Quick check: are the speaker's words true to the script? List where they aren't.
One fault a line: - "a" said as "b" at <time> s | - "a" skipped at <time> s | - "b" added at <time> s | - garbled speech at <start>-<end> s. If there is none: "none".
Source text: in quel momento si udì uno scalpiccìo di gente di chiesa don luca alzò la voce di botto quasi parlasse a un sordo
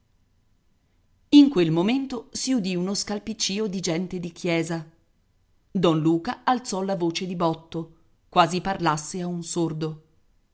none